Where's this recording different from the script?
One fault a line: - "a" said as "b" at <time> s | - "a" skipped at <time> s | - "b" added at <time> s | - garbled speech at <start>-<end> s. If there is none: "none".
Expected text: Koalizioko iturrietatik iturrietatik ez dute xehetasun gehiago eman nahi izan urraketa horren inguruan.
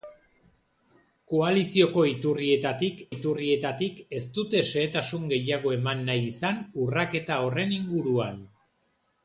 none